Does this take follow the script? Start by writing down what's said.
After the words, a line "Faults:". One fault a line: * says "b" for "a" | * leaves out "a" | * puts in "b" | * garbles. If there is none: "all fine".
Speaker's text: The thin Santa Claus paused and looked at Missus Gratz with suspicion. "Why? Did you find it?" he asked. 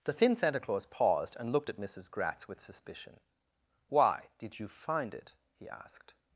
The thin Santa Claus paused and looked at Missus Gratz with suspicion. "Why? Did you find it?" he asked.
Faults:
all fine